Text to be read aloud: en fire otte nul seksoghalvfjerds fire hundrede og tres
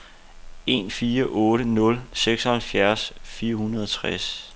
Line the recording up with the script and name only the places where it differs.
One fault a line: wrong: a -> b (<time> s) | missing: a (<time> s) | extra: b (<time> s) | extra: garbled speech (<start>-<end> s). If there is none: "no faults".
no faults